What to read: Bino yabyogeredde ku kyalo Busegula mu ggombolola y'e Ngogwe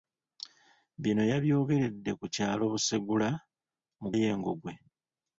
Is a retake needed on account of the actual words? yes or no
yes